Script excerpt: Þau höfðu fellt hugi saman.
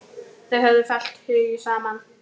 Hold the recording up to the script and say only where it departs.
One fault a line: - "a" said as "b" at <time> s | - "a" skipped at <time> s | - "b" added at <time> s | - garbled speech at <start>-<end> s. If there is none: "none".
none